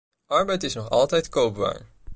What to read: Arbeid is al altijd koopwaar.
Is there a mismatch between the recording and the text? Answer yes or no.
yes